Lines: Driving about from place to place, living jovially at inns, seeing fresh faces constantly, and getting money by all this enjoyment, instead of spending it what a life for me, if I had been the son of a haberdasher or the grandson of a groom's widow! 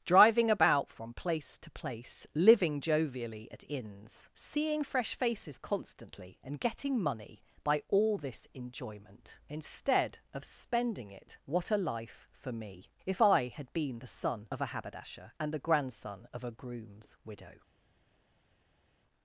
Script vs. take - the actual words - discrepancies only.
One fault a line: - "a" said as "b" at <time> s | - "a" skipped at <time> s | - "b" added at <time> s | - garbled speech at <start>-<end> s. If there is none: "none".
- "or" said as "and" at 15.4 s